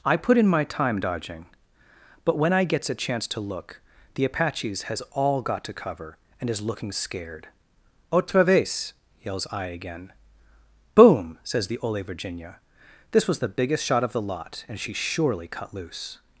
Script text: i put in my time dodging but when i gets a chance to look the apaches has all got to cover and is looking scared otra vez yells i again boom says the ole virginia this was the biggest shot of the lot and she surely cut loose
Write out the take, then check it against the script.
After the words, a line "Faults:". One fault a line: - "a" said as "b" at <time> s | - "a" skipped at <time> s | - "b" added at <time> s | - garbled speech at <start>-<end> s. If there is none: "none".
i put in my time dodging but when i gets a chance to look the apaches has all got to cover and is looking scared otra vez yells i again boom says the ole virginia this was the biggest shot of the lot and she surely cut loose
Faults:
none